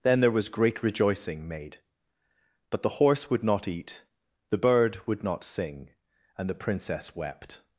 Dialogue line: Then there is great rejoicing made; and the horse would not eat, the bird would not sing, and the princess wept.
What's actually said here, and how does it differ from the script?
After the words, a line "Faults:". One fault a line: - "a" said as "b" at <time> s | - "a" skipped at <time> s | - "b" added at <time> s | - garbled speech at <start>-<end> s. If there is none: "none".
Then there was great rejoicing made; but the horse would not eat, the bird would not sing, and the princess wept.
Faults:
- "is" said as "was" at 0.3 s
- "and" said as "but" at 2.7 s